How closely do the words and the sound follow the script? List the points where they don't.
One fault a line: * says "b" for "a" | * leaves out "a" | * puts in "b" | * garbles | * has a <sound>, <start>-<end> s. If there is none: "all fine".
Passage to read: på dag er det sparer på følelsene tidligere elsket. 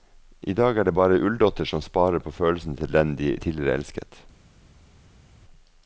* says "I" for "på"
* puts in "bare ulldotter som"
* puts in "til den de"